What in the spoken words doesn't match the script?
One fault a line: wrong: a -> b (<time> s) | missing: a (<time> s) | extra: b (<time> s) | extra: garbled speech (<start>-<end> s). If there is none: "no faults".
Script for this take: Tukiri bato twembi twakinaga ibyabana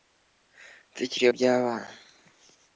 missing: bato twembi twakinaga (1.2 s)